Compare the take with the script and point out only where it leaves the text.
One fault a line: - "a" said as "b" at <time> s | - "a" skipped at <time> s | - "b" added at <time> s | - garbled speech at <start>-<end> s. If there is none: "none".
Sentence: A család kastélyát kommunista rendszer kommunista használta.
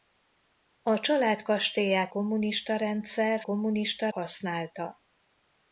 none